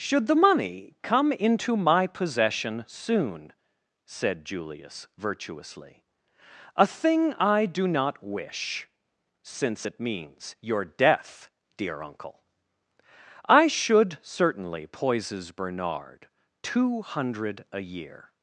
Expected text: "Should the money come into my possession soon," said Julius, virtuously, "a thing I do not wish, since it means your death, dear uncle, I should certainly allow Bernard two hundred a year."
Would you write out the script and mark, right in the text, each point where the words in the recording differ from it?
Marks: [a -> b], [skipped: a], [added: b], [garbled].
"Should the money come into my possession soon," said Julius, virtuously, "a thing I do not wish, since it means your death, dear uncle, I should certainly [allow -> poises] Bernard two hundred a year."